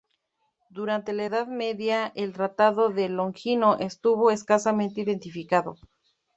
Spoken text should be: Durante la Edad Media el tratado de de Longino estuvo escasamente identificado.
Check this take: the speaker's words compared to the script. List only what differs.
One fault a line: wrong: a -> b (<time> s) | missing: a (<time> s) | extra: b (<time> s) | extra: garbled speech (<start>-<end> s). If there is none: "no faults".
missing: de (3.1 s)